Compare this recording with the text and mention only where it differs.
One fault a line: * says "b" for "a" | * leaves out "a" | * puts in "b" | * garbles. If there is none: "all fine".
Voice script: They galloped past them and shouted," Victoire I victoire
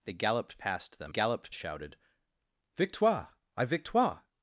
* says "galloped" for "and"